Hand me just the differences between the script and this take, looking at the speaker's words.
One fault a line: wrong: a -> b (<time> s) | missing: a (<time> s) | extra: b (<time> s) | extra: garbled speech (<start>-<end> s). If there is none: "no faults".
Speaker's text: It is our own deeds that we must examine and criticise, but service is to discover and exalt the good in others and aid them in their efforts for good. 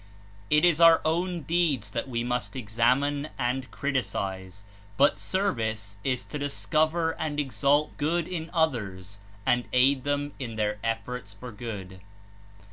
missing: the (8.0 s)